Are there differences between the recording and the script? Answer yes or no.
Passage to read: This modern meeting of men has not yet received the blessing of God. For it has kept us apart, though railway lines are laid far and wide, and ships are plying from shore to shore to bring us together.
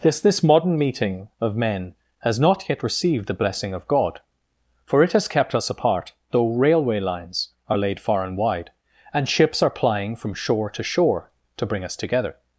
yes